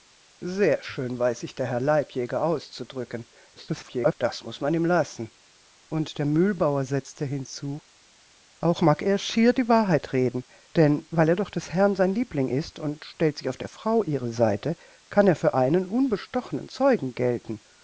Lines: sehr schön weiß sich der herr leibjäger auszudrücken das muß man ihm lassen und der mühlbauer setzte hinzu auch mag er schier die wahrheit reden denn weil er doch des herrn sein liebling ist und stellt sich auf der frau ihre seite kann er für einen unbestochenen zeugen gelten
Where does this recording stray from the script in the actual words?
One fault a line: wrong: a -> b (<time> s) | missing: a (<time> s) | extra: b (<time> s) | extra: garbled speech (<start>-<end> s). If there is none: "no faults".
extra: garbled speech (3.6-4.1 s)